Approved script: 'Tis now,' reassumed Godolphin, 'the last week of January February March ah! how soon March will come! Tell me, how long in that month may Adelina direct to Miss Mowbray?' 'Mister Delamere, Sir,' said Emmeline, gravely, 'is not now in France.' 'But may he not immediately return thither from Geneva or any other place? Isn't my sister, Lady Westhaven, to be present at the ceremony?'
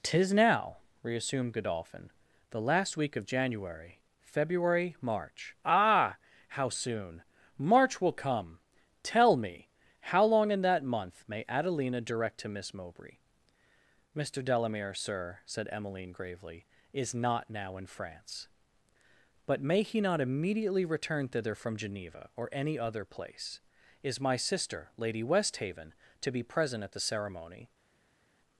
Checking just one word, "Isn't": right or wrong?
wrong